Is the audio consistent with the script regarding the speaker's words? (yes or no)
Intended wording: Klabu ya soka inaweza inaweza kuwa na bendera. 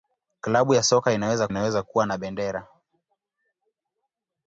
yes